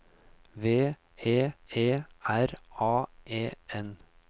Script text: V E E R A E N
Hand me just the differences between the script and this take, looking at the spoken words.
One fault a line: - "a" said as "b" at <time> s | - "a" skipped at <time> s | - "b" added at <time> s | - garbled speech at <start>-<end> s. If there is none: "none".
none